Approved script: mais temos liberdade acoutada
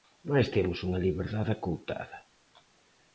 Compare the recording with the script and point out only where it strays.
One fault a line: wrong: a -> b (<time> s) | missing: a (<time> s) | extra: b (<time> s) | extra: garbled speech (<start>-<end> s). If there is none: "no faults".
extra: unha (0.9 s)